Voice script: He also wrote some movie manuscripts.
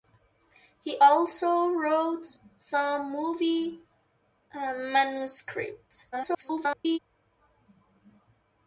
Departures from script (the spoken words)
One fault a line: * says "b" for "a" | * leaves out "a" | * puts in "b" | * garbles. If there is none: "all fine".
* garbles